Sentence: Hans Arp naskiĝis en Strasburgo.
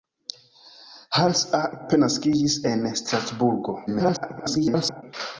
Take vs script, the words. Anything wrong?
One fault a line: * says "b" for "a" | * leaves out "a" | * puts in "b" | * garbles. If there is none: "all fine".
* garbles